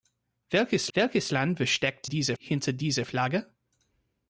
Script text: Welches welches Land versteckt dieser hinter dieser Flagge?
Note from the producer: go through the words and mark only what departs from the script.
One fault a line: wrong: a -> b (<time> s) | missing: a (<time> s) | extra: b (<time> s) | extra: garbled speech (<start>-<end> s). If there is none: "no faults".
no faults